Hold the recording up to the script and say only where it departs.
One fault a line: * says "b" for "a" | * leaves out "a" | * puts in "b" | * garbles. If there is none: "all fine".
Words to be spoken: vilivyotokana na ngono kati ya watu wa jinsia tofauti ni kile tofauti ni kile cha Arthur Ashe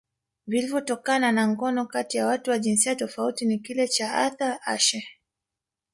* leaves out "tofauti ni kile"